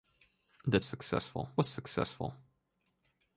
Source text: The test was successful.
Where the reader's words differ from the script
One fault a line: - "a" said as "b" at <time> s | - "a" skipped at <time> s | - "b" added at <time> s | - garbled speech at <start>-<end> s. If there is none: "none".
- "test" said as "successful" at 0.8 s